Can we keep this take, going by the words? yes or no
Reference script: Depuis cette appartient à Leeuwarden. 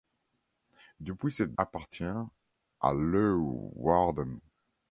yes